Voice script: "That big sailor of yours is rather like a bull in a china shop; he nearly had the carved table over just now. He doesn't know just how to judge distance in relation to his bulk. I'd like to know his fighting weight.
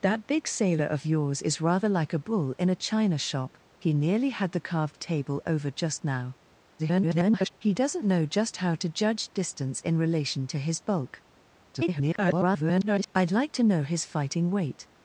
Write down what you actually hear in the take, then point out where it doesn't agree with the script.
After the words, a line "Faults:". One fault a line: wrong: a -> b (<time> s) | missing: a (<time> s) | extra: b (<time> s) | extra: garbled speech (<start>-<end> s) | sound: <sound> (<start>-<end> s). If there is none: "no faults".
"That big sailor of yours is rather like a bull in a china shop; he nearly had the carved table over just now. [garbled] He doesn't know just how to judge distance in relation to his bulk. [garbled] I'd like to know his fighting weight.
Faults:
extra: garbled speech (6.8-7.5 s)
extra: garbled speech (11.7-13.1 s)